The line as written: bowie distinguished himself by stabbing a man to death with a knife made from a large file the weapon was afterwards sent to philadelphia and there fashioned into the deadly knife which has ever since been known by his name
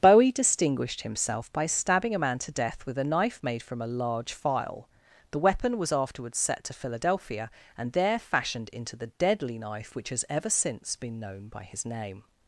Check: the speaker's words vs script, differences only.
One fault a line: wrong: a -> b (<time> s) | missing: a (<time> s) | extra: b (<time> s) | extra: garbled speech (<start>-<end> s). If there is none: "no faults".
wrong: sent -> set (6.4 s)